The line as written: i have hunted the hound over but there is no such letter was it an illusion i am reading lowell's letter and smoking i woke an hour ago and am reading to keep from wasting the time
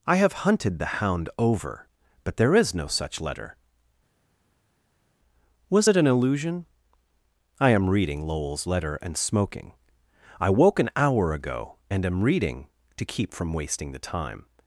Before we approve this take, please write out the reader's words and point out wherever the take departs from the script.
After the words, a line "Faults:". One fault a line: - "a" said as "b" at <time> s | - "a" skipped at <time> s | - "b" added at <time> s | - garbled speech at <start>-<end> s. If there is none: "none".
i have hunted the hound over but there is no such letter was it an illusion i am reading lowell's letter and smoking i woke an hour ago and am reading to keep from wasting the time
Faults:
none